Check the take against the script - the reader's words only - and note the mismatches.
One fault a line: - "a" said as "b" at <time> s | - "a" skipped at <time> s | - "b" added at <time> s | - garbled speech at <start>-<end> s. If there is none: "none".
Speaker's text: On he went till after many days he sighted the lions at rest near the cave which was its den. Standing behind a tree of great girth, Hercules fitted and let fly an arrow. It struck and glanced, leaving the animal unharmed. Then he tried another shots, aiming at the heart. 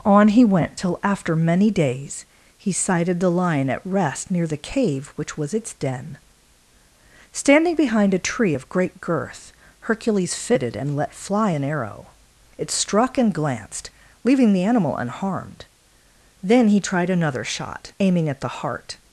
- "lions" said as "lion" at 3.3 s
- "shots" said as "shot" at 17.4 s